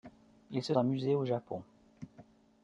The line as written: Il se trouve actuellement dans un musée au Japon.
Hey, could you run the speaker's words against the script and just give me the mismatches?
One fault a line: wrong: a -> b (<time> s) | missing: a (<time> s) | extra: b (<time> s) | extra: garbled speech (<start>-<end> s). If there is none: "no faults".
missing: trouve actuellement dans (0.7 s)